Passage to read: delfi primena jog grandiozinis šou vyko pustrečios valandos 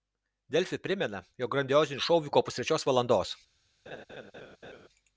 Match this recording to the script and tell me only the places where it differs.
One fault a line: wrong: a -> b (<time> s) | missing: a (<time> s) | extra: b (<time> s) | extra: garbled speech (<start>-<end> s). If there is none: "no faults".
no faults